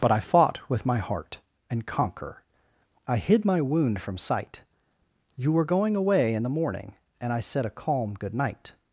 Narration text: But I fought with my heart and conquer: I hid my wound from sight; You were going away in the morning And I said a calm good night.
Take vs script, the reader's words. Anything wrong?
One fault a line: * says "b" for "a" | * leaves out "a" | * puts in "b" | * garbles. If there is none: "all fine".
all fine